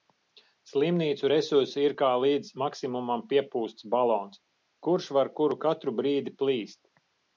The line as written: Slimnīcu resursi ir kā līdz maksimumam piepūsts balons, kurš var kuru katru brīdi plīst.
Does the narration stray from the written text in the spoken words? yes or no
no